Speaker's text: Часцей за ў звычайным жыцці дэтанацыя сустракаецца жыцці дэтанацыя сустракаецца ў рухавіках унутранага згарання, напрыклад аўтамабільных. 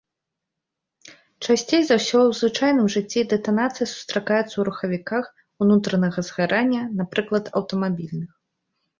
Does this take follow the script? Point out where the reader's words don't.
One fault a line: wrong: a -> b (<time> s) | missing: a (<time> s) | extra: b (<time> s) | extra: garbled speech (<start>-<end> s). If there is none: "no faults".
extra: ўсё (2.0 s)
missing: жыцці дэтанацыя сустракаецца (4.5 s)